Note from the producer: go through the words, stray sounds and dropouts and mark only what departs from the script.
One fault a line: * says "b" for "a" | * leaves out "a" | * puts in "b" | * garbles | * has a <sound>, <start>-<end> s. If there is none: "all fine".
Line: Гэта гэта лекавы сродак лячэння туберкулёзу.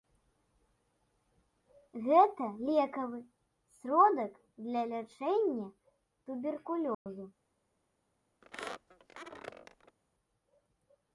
* leaves out "гэта"
* puts in "для"
* has a dropout, 6.9-7.1 s
* has a squeak, 8.4-10.0 s